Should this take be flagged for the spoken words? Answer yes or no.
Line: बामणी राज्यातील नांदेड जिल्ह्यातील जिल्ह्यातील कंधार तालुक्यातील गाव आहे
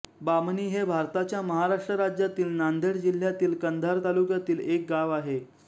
yes